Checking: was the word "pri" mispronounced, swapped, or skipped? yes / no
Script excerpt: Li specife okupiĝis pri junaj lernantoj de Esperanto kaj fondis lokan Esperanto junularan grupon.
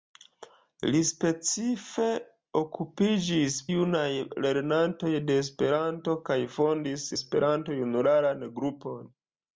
yes